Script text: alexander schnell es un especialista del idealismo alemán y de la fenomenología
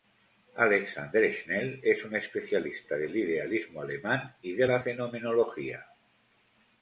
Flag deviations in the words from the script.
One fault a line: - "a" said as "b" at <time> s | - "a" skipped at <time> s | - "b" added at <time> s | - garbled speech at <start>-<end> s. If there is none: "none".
none